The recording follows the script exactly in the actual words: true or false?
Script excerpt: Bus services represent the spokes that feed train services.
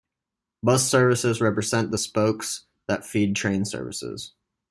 true